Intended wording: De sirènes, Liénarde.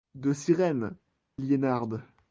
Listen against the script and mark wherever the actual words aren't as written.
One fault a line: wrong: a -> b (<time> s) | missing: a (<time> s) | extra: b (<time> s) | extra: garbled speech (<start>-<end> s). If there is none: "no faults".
no faults